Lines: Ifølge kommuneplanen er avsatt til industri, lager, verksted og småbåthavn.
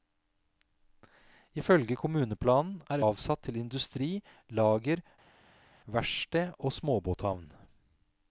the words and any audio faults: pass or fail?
pass